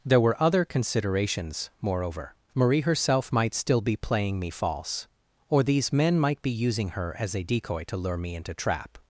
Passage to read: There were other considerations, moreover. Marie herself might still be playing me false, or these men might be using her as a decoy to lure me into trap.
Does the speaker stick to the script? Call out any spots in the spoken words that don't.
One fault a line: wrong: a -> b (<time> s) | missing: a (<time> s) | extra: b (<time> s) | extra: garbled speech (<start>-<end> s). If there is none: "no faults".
no faults